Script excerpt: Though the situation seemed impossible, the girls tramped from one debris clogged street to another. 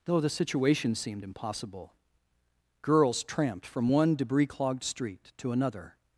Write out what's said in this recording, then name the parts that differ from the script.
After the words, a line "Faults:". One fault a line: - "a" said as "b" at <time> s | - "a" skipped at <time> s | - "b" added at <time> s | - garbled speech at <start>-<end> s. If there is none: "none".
Though the situation seemed impossible, girls tramped from one debris clogged street to another.
Faults:
- "the" skipped at 1.9 s